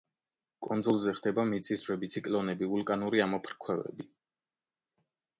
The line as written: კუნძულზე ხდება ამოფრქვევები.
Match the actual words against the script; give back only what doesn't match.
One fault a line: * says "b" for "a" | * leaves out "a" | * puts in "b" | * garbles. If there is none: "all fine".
* puts in "მიწისძვრები ციკლონები ვულკანური"